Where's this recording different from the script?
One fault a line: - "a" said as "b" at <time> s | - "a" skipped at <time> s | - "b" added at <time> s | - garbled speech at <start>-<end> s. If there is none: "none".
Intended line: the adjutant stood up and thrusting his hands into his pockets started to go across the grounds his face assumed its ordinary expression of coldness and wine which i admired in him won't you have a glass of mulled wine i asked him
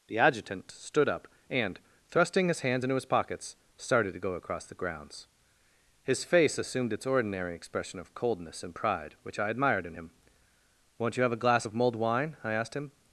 - "wine" said as "pride" at 8.7 s